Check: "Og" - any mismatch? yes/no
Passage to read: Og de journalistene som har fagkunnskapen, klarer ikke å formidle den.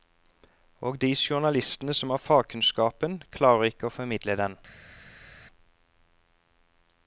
no